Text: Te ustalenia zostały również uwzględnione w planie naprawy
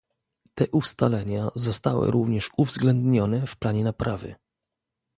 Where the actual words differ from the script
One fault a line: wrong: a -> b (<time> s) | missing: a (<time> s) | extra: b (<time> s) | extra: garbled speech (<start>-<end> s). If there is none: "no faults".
no faults